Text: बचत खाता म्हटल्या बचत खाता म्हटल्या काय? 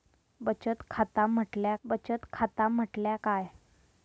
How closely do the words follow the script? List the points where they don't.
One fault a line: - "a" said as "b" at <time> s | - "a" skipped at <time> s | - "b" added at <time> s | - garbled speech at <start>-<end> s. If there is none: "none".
none